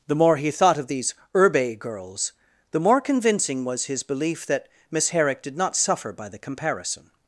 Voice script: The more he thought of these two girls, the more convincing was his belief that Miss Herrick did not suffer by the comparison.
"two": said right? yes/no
no